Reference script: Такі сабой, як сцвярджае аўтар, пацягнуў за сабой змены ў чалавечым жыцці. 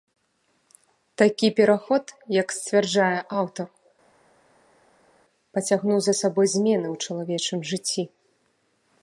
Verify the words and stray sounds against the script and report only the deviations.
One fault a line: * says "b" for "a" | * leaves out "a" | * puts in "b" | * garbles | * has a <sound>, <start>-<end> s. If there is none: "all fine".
* says "пераход" for "сабой"